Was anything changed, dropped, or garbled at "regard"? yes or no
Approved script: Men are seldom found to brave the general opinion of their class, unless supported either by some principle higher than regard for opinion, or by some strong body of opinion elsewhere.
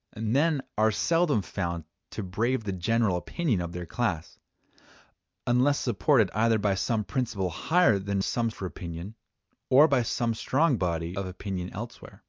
yes